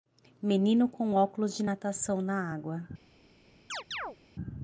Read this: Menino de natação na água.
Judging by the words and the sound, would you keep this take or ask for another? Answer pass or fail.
fail